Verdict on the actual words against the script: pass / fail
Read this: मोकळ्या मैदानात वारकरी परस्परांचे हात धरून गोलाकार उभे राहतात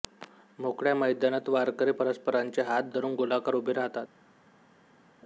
pass